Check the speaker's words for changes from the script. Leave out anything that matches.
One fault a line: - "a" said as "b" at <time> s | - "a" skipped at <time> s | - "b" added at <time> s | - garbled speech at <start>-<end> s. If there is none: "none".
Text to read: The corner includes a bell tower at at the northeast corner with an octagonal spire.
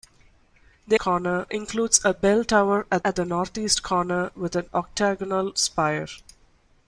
none